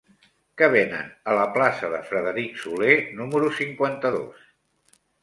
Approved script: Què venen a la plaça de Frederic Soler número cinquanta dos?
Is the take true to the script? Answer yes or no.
yes